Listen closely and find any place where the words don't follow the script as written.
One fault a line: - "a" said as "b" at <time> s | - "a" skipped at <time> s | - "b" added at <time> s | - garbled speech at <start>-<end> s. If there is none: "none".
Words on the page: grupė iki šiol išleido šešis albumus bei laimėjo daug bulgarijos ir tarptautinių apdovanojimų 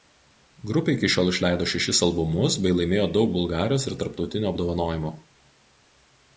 none